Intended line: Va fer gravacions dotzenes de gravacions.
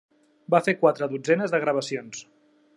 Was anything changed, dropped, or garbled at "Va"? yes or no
no